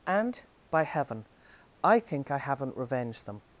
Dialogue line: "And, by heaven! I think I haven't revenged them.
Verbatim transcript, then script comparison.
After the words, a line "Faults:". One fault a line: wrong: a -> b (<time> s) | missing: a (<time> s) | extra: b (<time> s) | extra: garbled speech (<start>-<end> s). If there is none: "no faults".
"And, by heaven! I think I haven't revenged them.
Faults:
no faults